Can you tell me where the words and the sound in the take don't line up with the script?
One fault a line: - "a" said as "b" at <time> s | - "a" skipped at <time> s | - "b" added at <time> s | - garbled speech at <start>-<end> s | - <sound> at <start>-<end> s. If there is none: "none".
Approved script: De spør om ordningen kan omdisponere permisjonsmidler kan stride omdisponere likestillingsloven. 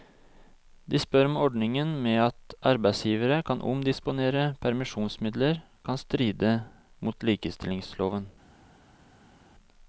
- "med at arbeidsgivere" added at 2.0 s
- "omdisponere" said as "mot" at 7.0 s